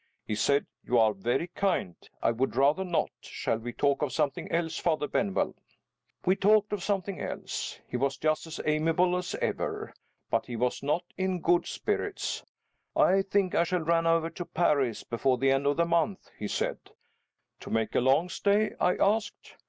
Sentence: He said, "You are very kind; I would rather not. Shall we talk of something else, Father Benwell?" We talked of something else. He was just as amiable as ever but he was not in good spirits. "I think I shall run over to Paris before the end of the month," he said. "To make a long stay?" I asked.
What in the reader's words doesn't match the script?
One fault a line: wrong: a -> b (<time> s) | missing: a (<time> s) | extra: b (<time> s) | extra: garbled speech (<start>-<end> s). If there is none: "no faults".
no faults